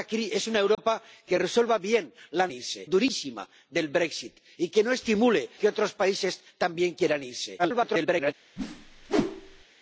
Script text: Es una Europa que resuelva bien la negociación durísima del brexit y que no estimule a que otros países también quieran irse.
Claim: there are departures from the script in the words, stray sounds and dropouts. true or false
true